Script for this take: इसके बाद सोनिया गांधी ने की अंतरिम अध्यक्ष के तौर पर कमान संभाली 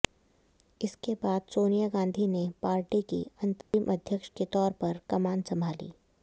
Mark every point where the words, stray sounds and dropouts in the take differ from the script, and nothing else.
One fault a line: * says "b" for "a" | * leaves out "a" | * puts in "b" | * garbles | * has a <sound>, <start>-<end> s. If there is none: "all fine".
* puts in "पार्टी"
* has a dropout, 3.6-3.7 s